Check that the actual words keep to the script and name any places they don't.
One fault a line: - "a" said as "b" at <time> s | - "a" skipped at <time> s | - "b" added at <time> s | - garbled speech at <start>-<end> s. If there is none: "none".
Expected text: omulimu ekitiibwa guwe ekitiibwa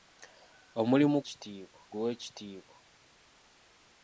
none